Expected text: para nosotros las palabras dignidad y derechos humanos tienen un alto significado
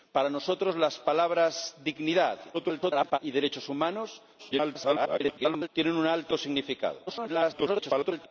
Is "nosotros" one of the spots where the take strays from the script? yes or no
no